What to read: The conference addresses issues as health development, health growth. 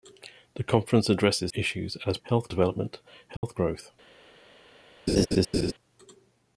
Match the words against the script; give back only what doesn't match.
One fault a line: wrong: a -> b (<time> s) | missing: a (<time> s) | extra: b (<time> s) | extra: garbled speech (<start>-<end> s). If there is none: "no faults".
no faults